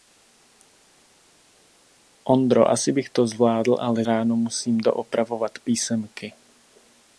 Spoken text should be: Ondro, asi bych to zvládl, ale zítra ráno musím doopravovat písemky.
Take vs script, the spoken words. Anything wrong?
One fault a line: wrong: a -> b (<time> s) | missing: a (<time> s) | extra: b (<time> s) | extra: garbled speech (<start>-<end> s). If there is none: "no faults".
missing: zítra (4.1 s)